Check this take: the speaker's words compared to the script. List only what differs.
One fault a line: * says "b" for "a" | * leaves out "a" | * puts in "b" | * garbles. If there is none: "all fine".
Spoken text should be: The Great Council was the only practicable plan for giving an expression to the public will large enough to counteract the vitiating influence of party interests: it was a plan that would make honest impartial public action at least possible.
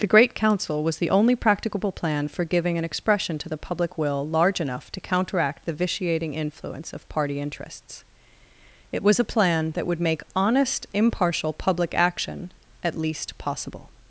all fine